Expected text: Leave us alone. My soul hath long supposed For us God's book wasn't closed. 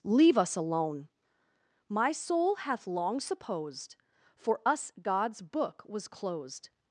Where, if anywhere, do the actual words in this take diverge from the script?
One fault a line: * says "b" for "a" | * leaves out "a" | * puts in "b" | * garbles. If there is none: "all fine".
* says "was" for "wasn't"